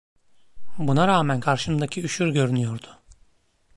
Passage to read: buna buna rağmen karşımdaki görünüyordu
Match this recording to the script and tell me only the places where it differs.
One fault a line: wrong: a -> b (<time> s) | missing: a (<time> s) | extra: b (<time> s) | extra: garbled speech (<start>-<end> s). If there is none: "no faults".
missing: buna (1.1 s)
extra: üşür (2.0 s)